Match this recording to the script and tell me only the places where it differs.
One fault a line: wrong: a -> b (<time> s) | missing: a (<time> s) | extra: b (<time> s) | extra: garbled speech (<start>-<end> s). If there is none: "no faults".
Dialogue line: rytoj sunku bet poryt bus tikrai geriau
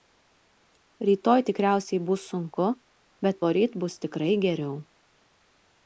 extra: tikriausiai bus (1.5 s)